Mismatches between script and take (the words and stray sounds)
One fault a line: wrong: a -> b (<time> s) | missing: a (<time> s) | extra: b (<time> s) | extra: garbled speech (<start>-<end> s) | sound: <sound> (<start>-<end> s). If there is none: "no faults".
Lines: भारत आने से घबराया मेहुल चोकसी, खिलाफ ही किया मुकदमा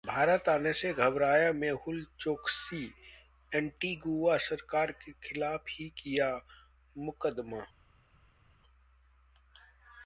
extra: एंटीगुआ सरकार के (3.5 s)